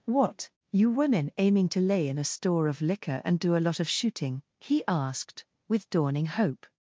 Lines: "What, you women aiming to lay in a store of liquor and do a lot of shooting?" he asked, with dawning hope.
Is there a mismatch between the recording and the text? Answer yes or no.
no